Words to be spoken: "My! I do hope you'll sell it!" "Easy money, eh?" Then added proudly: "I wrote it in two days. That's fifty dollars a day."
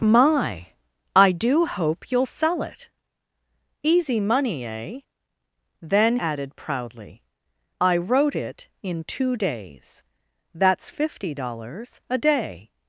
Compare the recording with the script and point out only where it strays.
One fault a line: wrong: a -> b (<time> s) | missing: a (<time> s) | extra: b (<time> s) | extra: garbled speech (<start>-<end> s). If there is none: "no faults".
no faults